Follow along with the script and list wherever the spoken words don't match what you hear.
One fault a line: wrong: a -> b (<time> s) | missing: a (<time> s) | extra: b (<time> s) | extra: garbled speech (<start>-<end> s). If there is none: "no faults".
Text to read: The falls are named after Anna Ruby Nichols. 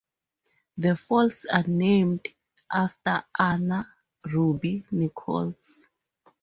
no faults